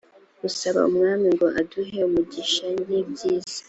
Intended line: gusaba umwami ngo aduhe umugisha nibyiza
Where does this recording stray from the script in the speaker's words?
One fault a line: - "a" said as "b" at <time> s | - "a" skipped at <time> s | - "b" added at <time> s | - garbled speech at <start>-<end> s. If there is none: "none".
none